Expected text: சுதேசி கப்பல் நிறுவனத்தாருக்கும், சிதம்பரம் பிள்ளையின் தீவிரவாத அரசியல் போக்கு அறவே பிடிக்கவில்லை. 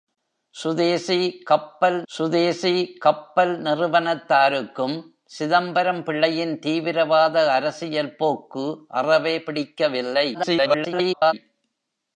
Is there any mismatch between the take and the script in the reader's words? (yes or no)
yes